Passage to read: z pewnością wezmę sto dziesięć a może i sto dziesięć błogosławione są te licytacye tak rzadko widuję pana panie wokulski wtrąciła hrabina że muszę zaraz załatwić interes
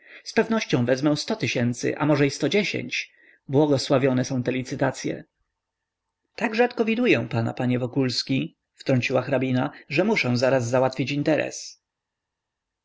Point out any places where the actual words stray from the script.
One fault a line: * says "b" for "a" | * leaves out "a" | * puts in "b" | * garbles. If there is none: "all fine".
* says "tysięcy" for "dziesięć"